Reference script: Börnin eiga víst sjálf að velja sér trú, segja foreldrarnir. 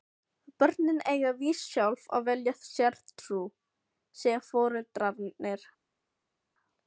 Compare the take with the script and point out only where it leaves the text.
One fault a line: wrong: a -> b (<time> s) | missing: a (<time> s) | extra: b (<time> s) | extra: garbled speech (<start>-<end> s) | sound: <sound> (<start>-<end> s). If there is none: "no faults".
no faults